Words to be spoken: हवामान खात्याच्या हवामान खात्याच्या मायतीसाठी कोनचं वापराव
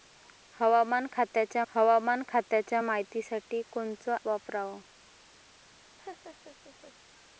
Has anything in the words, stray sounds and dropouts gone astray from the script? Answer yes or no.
yes